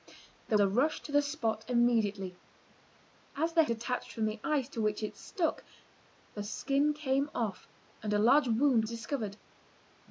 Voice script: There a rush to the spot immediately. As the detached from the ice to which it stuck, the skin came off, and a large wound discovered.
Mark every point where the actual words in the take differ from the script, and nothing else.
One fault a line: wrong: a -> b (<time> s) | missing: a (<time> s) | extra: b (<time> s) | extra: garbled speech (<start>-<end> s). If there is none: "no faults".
no faults